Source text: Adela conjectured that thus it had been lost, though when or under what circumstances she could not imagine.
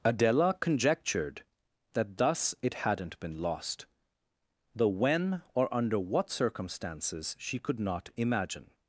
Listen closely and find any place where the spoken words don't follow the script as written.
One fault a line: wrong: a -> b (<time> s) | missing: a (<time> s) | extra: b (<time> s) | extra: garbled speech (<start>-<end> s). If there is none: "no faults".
wrong: had -> hadn't (2.7 s)